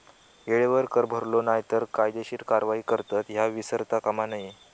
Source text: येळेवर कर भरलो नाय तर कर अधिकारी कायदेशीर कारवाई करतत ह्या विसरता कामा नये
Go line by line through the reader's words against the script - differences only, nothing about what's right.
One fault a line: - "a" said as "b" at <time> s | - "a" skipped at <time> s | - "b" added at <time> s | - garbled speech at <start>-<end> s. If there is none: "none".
- "कर अधिकारी" skipped at 1.8 s